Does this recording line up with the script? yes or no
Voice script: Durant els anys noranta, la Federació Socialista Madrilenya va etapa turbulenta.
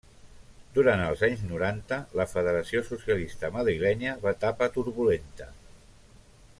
yes